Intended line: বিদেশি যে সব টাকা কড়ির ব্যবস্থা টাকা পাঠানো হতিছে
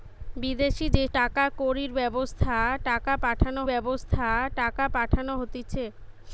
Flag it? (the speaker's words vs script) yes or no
yes